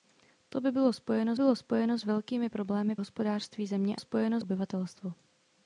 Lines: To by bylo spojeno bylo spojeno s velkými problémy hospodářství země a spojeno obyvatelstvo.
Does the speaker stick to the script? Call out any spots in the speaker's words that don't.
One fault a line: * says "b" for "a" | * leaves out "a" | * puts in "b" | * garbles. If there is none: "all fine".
all fine